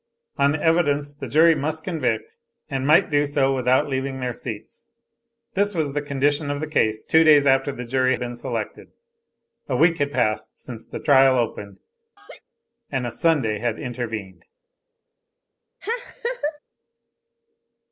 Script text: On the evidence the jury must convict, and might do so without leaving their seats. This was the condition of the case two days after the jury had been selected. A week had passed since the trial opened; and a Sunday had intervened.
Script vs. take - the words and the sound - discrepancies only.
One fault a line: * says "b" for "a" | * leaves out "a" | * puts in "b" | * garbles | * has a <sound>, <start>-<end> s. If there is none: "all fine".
* leaves out "had"
* has a laugh, 12.2-12.4 s
* has a laugh, 15.8-16.6 s